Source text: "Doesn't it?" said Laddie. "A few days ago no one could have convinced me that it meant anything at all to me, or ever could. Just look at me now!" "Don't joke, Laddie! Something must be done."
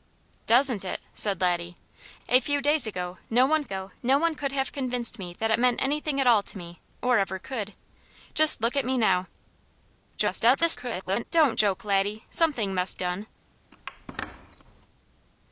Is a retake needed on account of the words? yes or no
yes